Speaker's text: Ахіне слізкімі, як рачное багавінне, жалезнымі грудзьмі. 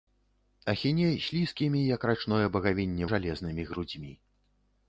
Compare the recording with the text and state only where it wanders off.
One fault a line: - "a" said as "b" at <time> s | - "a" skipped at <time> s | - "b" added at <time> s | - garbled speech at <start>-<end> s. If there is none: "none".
none